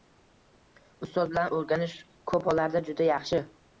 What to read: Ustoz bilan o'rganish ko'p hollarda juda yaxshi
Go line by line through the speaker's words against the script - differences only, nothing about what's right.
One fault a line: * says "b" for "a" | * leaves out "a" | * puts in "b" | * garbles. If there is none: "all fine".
all fine